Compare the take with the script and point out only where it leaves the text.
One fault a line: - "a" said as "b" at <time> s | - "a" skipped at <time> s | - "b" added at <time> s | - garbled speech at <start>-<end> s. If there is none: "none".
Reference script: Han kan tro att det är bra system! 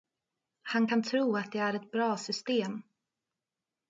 - "ett" added at 1.7 s